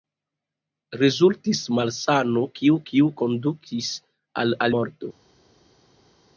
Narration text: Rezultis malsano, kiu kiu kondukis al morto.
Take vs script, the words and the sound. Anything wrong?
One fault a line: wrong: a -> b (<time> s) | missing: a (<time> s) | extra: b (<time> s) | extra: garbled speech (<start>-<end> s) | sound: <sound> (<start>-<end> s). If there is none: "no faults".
no faults